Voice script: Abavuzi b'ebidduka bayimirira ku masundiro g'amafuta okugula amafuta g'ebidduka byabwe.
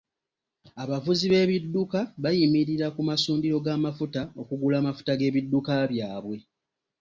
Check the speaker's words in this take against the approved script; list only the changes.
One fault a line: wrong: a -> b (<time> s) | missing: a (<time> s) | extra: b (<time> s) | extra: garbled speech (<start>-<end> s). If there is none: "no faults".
no faults